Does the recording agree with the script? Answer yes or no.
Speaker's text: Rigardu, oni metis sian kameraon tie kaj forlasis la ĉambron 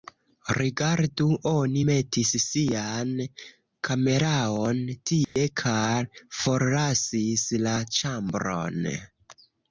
yes